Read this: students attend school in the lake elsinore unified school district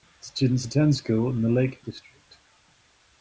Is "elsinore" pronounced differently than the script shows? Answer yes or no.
yes